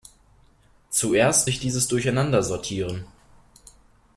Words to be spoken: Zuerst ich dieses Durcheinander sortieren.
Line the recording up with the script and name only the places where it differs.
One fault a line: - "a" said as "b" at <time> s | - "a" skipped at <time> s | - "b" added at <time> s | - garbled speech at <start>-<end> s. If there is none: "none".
none